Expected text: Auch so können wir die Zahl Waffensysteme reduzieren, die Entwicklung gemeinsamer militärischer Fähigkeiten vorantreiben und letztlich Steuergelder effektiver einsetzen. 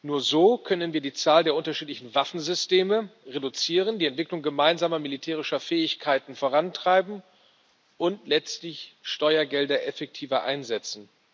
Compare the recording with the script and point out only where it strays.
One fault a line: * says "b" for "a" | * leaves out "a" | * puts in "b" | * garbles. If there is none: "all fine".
* says "Nur" for "Auch"
* puts in "der unterschiedlichen"